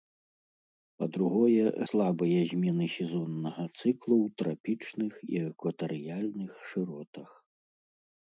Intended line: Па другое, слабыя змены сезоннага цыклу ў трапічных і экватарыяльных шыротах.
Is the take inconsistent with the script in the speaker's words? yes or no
no